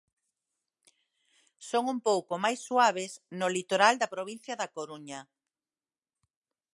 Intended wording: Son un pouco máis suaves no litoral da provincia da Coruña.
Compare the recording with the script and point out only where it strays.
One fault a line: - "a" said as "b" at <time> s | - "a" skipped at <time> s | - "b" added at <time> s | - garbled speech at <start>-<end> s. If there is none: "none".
none